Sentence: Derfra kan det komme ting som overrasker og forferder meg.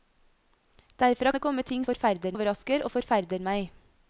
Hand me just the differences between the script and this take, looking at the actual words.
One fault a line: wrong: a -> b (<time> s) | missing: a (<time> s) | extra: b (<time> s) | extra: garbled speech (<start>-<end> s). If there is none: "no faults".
missing: kan (1.3 s)
wrong: som -> forferder (1.9 s)